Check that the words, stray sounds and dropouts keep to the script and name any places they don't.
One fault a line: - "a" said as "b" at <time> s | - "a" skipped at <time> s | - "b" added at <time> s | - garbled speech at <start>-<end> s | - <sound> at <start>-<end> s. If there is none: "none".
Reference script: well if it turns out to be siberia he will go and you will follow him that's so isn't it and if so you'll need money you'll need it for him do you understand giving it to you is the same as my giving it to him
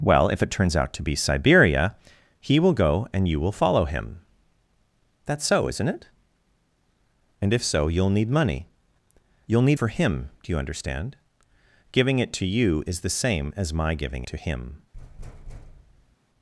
- "it" skipped at 9.8 s
- "it" skipped at 14.2 s
- thud at 14.9-16.2 s